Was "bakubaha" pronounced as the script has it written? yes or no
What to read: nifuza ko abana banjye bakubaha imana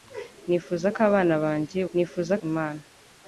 no